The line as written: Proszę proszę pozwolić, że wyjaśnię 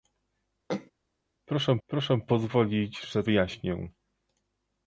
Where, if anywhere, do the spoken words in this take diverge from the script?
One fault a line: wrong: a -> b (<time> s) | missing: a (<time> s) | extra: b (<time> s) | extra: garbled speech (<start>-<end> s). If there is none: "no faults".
no faults